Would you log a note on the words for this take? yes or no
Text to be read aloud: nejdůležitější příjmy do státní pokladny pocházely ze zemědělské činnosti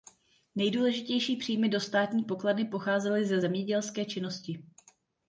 no